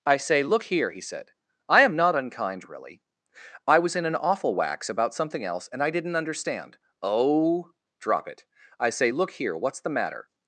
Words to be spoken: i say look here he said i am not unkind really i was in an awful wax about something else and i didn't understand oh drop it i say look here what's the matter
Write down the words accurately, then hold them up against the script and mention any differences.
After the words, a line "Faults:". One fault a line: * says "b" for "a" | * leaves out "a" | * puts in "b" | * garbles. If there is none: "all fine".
i say look here he said i am not unkind really i was in an awful wax about something else and i didn't understand oh drop it i say look here what's the matter
Faults:
all fine